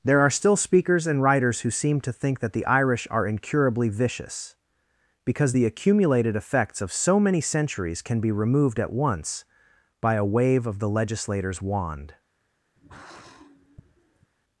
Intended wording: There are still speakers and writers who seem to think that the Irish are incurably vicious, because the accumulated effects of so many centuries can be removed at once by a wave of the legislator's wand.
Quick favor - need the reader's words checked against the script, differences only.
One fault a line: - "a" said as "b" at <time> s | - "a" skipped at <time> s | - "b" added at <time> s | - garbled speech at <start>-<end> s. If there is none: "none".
none